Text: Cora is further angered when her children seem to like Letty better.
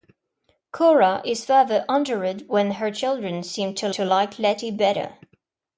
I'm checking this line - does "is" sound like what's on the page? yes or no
yes